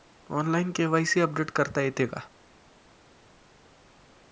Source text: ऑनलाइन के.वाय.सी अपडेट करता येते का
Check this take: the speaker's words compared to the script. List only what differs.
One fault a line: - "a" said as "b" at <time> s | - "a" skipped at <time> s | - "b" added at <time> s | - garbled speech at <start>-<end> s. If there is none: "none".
none